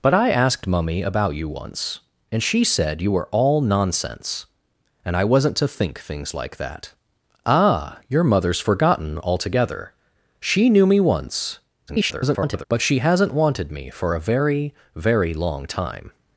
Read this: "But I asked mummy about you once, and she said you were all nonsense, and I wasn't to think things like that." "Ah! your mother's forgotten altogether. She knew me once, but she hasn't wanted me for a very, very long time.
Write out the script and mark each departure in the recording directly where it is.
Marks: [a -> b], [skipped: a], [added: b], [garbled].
"But I asked mummy about you once, and she said you were all nonsense, and I wasn't to think things like that." "Ah! your mother's forgotten altogether. She knew me once, [garbled] but she hasn't wanted me for a very, very long time.